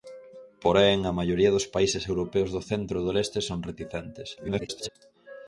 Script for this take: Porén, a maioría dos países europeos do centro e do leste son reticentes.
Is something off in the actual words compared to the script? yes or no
yes